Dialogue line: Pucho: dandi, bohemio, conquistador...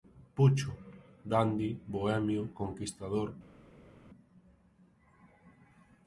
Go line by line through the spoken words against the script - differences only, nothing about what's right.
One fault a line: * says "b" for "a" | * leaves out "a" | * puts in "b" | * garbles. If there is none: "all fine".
all fine